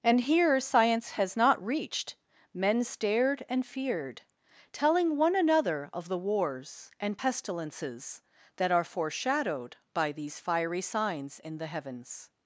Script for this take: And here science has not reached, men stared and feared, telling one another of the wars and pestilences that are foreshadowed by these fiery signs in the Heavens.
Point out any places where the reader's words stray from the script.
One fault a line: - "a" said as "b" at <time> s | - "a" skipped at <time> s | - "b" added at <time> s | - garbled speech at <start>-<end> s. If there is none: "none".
none